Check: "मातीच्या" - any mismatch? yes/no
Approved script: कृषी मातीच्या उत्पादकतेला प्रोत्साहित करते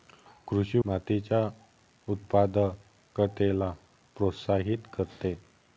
no